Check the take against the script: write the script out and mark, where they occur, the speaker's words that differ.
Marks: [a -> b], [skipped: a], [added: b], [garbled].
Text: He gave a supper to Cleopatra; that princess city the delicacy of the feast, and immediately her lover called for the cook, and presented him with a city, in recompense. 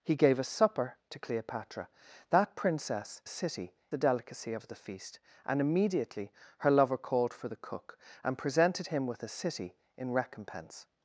He gave a supper to Cleopatra; that princess city the delicacy of the feast, and immediately her lover called for the cook, and presented him with a city, in recompense.